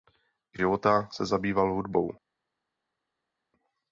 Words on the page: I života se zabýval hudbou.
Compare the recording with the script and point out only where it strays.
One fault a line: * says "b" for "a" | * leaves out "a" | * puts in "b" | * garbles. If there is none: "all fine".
all fine